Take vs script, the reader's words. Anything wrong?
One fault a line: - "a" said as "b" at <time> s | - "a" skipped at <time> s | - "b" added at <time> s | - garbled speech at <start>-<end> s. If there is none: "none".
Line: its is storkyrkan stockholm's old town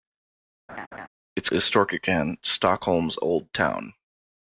none